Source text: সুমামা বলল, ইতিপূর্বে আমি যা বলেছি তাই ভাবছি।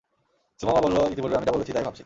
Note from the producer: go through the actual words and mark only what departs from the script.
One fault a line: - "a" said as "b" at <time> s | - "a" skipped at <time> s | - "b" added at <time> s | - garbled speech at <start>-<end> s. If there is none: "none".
none